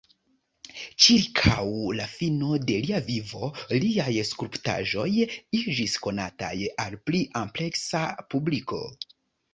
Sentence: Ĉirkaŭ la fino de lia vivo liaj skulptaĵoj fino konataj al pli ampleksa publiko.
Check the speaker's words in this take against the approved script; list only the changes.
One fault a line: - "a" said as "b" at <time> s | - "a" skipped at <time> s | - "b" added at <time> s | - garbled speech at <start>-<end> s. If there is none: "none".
- "fino" said as "iĝis" at 5.6 s